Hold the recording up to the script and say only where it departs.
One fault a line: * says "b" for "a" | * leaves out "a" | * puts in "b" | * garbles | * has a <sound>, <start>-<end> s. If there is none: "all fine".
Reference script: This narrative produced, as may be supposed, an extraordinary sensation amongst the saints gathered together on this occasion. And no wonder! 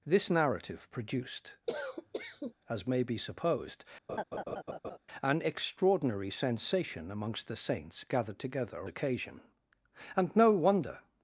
* has a cough, 1.7-2.5 s
* has a laugh, 4.1-5.0 s
* leaves out "on this"